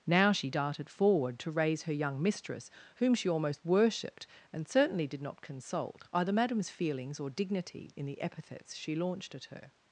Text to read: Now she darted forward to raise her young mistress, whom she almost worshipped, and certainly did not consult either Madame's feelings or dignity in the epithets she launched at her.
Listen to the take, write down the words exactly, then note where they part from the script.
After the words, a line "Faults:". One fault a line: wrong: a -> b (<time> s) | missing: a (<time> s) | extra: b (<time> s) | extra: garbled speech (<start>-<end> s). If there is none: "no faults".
Now she darted forward to raise her young mistress, whom she almost worshipped, and certainly did not consult either Madame's feelings or dignity in the epithets she launched at her.
Faults:
no faults